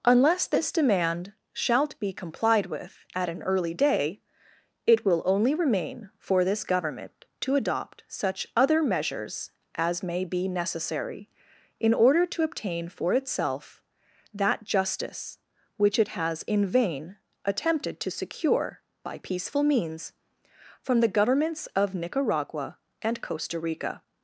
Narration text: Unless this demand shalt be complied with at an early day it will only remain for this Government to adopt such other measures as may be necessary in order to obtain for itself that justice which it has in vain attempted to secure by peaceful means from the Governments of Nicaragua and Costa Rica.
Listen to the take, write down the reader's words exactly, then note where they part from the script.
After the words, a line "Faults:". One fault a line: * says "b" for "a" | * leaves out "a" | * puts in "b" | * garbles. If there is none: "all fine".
Unless this demand shalt be complied with at an early day it will only remain for this Government to adopt such other measures as may be necessary in order to obtain for itself that justice which it has in vain attempted to secure by peaceful means from the Governments of Nicaragua and Costa Rica.
Faults:
all fine